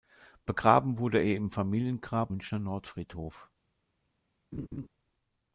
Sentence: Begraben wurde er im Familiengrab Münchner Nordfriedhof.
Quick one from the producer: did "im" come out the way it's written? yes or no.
yes